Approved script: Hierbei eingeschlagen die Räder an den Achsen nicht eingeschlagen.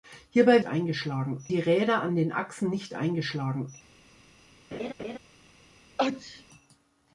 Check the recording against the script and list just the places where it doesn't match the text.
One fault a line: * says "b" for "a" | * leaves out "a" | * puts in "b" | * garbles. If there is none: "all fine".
all fine